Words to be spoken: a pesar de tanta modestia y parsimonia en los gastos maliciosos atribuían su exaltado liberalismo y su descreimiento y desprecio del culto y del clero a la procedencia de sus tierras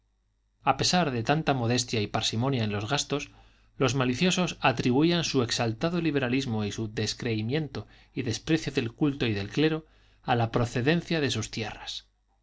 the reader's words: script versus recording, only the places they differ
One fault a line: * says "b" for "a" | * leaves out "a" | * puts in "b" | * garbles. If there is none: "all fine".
* puts in "los"